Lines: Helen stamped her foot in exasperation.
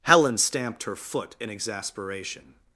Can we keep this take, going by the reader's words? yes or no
yes